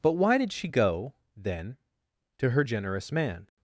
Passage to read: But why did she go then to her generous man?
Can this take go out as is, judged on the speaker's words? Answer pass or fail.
pass